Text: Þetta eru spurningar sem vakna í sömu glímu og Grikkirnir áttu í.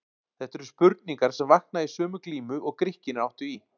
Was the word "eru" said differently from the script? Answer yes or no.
no